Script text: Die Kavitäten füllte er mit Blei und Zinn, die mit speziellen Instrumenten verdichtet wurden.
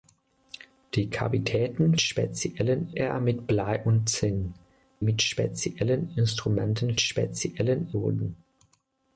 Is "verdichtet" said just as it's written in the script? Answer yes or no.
no